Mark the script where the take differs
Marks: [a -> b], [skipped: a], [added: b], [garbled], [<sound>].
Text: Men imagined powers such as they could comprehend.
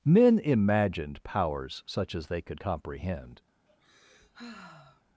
Men imagined powers such as they could comprehend. [sigh]